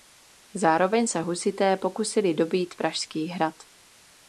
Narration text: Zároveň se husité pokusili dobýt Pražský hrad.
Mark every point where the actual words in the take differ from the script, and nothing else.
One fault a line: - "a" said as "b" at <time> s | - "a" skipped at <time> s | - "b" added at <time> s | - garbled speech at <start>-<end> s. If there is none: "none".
none